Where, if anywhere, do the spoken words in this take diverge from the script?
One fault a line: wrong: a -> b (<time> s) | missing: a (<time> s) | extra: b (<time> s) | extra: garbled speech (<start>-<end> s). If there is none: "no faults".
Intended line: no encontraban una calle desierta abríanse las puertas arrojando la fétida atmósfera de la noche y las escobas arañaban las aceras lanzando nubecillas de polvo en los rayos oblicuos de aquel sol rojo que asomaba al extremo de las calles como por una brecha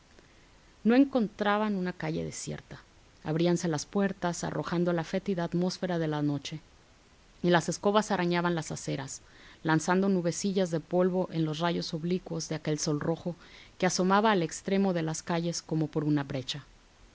no faults